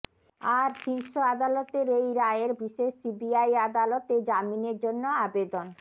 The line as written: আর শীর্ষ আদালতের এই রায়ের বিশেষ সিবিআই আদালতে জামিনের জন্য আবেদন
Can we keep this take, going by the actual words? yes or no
yes